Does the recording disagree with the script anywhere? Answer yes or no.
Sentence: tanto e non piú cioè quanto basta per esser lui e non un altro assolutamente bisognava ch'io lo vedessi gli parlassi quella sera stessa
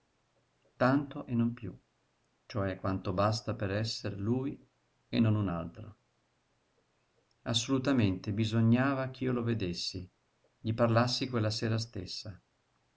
no